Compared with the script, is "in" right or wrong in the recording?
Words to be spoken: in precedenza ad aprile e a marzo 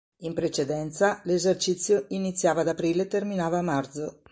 right